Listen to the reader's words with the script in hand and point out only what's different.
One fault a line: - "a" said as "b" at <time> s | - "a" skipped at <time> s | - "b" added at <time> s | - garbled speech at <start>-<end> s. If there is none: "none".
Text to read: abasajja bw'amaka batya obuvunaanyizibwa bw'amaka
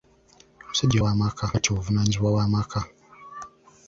none